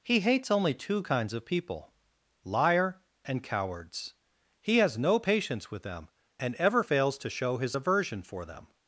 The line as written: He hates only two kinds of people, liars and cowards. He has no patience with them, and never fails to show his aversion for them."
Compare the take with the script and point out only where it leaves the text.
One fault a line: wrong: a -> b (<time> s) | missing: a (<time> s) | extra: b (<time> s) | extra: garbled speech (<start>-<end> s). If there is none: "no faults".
wrong: liars -> liar (2.4 s)
wrong: never -> ever (6.5 s)